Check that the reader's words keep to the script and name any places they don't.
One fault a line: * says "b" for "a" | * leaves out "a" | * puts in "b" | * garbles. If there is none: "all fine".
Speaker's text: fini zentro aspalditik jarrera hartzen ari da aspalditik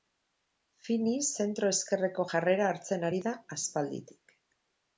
* says "ezkerreko" for "aspalditik"